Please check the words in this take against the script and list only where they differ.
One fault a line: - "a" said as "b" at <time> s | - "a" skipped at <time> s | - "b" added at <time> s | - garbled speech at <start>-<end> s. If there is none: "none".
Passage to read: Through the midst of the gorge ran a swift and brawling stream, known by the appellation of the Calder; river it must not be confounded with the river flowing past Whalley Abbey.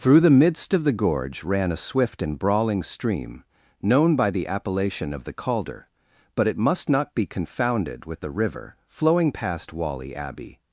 - "river" said as "but" at 6.3 s